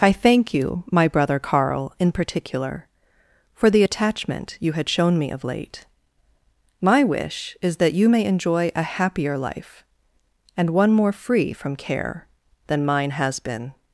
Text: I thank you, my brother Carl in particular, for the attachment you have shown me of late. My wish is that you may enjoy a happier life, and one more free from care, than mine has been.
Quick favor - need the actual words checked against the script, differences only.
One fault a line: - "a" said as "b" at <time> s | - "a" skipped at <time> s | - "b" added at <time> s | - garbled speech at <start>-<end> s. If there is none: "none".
- "have" said as "had" at 4.7 s